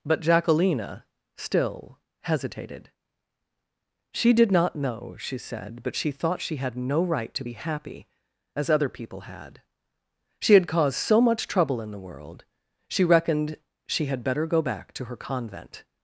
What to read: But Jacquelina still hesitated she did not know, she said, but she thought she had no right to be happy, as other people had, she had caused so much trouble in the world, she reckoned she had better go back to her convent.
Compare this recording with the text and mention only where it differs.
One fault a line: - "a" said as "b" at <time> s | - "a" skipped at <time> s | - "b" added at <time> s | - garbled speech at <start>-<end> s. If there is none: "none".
none